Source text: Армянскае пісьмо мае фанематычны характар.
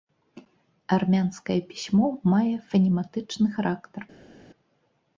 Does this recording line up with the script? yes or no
yes